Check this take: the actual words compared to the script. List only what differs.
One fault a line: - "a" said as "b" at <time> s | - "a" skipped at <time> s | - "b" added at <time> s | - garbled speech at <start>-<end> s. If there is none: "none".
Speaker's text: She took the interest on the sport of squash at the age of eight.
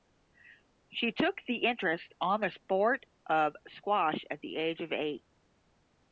none